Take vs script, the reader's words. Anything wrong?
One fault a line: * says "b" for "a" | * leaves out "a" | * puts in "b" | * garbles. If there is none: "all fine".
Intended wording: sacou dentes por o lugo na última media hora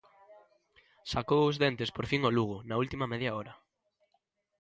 * puts in "os"
* puts in "fin"